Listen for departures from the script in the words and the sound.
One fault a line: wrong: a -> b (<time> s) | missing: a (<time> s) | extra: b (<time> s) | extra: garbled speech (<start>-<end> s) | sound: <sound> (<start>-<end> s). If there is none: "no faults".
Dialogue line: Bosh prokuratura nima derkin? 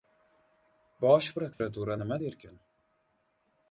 sound: dropout (1.5-1.6 s)